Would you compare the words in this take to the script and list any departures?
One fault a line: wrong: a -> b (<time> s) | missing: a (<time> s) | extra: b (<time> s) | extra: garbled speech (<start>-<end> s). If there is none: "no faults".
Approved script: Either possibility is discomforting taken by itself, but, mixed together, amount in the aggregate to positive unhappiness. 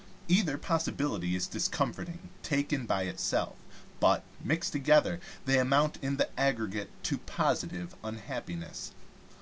extra: they (5.4 s)